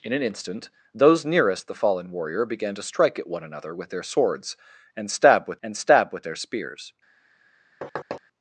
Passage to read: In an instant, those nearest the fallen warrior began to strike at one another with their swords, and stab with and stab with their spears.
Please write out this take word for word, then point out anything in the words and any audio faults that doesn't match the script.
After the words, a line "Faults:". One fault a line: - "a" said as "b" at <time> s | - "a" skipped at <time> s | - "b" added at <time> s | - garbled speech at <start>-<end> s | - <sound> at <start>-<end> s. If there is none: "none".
In an instant, those nearest the fallen warrior began to strike at one another with their swords, and stab with and stab with their spears.
Faults:
- thud at 7.8-8.2 s